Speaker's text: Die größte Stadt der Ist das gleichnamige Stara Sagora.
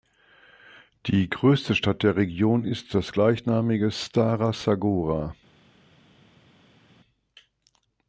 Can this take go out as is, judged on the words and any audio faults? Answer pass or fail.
fail